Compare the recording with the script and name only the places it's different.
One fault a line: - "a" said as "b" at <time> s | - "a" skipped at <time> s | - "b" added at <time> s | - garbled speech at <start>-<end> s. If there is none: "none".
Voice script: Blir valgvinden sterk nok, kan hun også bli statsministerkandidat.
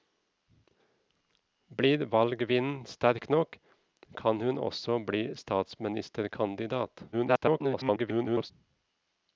- garbled speech at 7.1-8.5 s